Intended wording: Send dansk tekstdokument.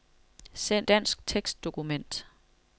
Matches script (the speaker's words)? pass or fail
pass